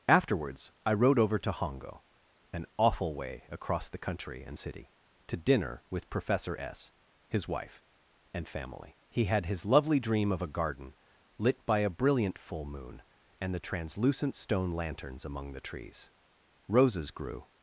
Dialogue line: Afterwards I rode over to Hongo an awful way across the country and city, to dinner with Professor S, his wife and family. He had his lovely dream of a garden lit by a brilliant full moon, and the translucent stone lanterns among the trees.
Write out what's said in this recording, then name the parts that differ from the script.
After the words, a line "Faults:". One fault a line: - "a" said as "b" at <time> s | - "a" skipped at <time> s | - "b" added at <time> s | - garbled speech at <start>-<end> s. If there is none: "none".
Afterwards I rode over to Hongo an awful way across the country and city, to dinner with Professor S, his wife and family. He had his lovely dream of a garden lit by a brilliant full moon, and the translucent stone lanterns among the trees. Roses grew
Faults:
- "Roses grew" added at 16.7 s